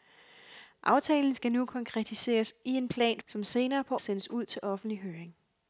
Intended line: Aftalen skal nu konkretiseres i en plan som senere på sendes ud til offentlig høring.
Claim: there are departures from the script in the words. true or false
false